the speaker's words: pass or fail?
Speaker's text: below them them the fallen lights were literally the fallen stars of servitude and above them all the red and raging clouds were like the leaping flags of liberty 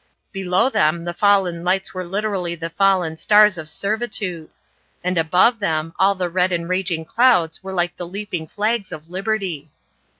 fail